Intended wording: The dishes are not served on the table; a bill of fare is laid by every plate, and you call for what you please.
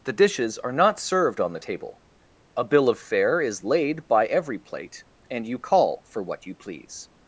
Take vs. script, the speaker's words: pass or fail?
pass